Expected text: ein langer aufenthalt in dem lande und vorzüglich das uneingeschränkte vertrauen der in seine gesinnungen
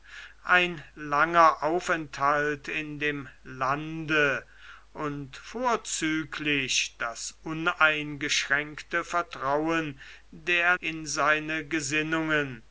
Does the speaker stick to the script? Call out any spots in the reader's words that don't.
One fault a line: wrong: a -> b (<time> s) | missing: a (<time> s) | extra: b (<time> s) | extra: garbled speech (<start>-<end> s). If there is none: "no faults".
no faults